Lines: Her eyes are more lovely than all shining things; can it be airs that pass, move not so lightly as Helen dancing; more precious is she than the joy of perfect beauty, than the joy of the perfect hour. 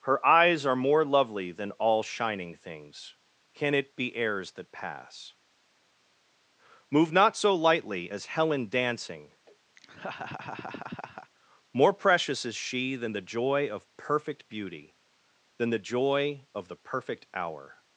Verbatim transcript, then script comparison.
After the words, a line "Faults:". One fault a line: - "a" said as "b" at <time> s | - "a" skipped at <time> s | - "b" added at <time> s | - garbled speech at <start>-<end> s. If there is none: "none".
Her eyes are more lovely than all shining things; can it be airs that pass, move not so lightly as Helen dancing; more precious is she than the joy of perfect beauty, than the joy of the perfect hour.
Faults:
none